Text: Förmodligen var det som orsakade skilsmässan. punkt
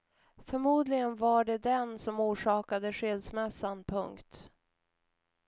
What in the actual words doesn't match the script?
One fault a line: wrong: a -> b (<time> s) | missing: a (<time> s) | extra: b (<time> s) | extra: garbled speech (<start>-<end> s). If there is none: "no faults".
extra: den (1.6 s)